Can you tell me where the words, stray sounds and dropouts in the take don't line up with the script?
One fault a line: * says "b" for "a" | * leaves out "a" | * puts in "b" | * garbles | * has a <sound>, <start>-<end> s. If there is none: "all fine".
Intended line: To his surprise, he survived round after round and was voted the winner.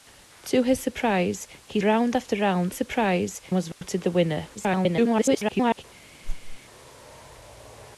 * leaves out "survived"
* says "surprise" for "and"
* has a dropout, 3.7-3.8 s
* garbles
* has a whoosh, 6.2-6.6 s